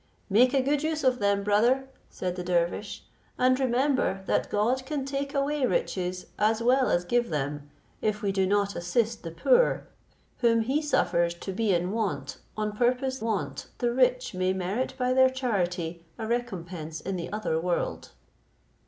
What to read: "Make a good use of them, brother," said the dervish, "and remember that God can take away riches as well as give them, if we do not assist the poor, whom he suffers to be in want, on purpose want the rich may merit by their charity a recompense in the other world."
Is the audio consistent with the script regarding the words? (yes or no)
yes